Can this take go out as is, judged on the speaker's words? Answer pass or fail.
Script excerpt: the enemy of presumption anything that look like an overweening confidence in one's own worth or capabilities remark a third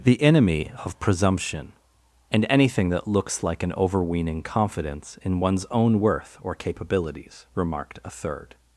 fail